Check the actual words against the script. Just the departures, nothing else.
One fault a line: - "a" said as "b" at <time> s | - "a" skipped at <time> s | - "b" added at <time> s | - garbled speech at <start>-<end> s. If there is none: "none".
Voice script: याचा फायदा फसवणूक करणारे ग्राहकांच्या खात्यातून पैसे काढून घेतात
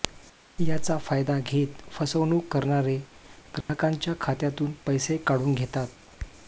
- "घेत" added at 1.4 s